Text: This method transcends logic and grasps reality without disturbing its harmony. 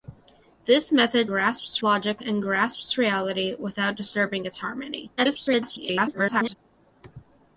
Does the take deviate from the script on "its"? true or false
false